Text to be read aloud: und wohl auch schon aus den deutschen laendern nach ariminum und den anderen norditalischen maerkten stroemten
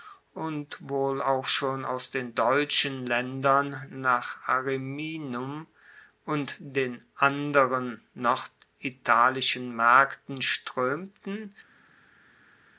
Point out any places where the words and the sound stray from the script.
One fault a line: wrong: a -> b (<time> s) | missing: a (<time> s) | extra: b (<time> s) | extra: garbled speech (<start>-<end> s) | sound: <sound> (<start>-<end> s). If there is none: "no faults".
no faults